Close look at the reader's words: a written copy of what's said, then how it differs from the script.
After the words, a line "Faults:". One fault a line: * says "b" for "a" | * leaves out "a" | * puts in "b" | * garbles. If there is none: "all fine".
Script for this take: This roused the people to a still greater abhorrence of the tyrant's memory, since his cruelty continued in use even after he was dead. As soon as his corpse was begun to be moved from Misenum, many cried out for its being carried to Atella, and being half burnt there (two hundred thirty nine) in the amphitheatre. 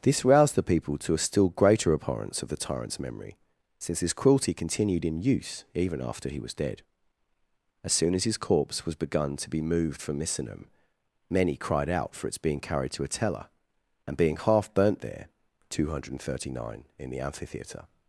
This roused the people to a still greater abhorrence of the tyrant's memory, since his cruelty continued in use even after he was dead. As soon as his corpse was begun to be moved from Misenum, many cried out for its being carried to Atella, and being half burnt there (two hundred thirty nine) in the amphitheatre.
Faults:
all fine